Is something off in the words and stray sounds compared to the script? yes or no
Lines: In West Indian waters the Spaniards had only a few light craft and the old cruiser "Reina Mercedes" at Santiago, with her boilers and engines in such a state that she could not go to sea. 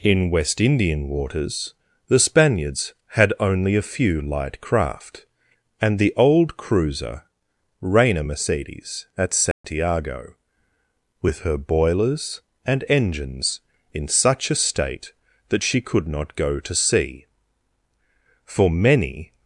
yes